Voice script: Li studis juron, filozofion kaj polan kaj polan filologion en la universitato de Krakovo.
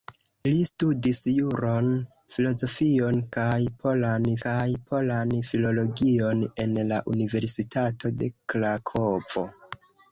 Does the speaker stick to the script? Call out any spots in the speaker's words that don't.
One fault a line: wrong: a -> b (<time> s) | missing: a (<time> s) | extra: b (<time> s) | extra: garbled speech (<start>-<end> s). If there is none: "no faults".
no faults